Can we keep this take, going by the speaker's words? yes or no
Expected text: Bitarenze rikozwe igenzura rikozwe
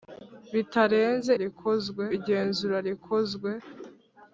yes